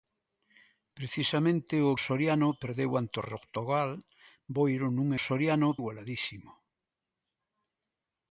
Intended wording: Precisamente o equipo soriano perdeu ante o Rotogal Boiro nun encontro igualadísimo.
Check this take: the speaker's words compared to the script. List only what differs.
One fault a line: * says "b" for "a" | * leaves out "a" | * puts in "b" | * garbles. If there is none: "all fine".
* leaves out "equipo"
* says "soriano" for "encontro"